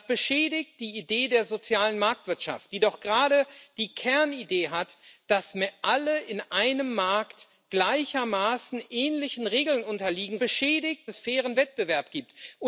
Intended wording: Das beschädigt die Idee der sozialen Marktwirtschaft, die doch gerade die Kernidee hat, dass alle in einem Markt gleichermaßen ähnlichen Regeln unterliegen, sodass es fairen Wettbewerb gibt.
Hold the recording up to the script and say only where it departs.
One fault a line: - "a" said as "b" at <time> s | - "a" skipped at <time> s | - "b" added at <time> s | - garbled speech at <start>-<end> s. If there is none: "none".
- "sodass" said as "beschädigt" at 10.4 s